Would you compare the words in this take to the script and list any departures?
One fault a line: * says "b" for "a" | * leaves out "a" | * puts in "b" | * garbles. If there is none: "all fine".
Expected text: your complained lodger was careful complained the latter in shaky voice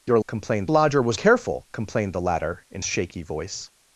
all fine